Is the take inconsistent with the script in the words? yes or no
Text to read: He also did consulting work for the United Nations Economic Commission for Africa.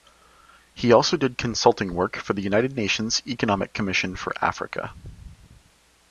no